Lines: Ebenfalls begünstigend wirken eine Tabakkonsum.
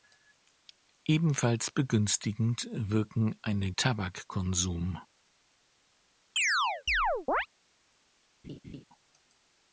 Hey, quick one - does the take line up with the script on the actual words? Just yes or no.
yes